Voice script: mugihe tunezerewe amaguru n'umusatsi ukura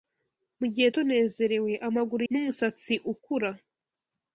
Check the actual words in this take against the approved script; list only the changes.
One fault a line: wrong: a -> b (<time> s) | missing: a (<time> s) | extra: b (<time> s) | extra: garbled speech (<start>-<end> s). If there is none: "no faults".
no faults